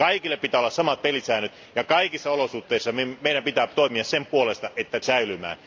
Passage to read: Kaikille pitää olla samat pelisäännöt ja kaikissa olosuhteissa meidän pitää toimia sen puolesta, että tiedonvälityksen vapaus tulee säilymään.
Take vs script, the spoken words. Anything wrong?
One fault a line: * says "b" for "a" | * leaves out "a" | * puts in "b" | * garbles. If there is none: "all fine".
* leaves out "tiedonvälityksen vapaus tulee"